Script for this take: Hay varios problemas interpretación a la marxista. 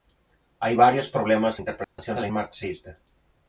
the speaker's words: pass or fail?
pass